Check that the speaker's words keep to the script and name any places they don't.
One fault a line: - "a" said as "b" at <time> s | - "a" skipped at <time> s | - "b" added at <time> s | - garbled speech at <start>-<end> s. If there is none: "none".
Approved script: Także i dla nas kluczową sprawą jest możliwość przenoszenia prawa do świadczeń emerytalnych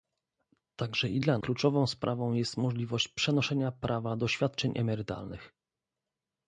- "nas" skipped at 1.4 s